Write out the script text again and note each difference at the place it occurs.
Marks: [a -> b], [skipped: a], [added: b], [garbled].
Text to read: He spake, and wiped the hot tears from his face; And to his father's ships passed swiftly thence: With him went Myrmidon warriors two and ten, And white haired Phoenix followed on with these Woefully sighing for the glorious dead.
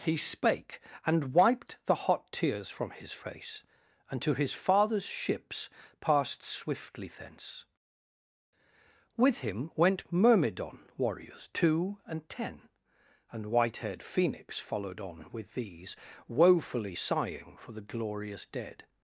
He spake, and wiped the hot tears from his face; And to his father's ships passed swiftly thence: With him went Myrmidon warriors two and ten, And white haired Phoenix followed on with these Woefully sighing for the glorious dead.